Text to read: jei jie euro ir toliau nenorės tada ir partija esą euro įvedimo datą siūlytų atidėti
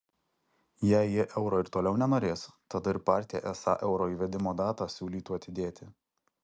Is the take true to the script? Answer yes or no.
yes